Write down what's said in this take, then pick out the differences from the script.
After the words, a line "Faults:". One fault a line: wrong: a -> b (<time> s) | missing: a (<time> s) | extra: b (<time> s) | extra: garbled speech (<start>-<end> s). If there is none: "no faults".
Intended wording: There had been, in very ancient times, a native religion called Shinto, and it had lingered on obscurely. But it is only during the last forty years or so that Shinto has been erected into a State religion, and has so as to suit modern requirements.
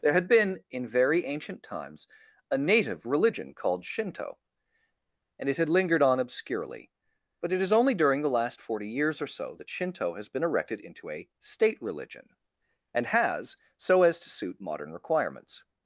There had been, in very ancient times, a native religion called Shinto, and it had lingered on obscurely. But it is only during the last forty years or so that Shinto has been erected into a State religion, and has so as to suit modern requirements.
Faults:
no faults